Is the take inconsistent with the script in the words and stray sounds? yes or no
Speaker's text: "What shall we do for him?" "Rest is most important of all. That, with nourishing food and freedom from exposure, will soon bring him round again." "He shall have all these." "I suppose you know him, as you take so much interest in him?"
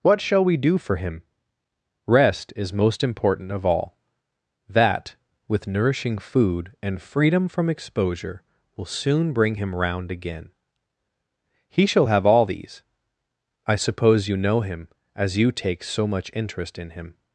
no